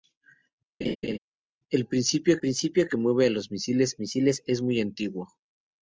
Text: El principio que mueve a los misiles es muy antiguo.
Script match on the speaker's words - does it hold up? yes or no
no